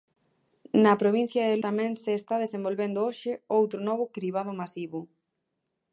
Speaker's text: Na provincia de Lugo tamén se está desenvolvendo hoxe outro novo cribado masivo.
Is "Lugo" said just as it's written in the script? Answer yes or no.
no